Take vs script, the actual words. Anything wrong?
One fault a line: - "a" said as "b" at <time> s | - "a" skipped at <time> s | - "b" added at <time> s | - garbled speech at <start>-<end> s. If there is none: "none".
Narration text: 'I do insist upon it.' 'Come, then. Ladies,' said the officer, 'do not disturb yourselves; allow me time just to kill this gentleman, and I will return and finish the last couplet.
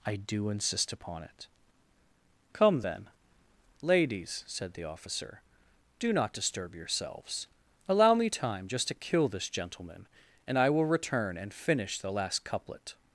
none